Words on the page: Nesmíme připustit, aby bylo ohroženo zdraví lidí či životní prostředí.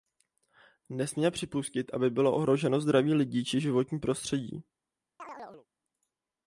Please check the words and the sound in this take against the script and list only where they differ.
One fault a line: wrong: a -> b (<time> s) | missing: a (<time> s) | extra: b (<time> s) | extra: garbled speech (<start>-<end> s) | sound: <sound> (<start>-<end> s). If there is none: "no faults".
sound: chirp (5.2-5.7 s)